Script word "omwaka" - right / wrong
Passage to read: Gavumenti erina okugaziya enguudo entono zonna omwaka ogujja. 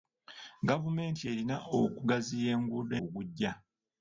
wrong